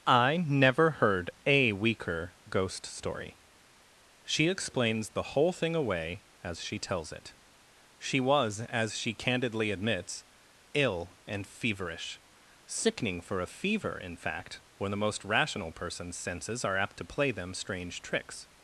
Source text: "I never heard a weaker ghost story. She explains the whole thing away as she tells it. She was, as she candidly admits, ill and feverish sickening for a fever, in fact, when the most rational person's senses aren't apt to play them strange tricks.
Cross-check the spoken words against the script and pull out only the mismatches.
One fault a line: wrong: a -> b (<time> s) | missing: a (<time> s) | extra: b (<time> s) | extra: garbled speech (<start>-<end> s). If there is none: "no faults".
wrong: aren't -> are (16.6 s)